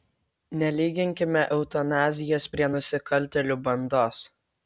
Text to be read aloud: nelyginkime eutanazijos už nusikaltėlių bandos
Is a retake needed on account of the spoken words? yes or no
yes